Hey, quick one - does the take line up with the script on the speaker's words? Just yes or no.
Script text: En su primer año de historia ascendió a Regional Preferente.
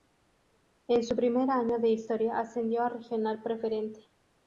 yes